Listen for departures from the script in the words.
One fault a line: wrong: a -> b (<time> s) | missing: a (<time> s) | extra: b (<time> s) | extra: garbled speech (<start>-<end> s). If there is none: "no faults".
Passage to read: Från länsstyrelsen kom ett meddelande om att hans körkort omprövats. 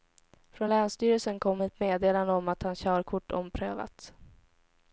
no faults